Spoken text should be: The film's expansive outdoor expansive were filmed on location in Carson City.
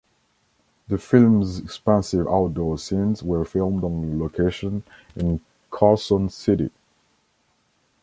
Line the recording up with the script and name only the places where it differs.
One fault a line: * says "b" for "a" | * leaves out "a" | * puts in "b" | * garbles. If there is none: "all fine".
* says "scenes" for "expansive"